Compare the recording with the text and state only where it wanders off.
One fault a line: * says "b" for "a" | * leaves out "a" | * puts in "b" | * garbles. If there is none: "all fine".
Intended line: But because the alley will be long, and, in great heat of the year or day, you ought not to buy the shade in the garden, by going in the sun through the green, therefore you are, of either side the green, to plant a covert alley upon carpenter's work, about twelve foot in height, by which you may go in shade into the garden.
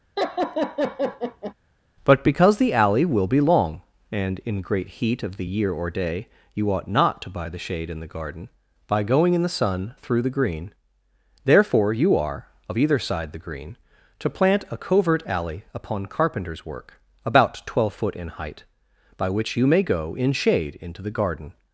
all fine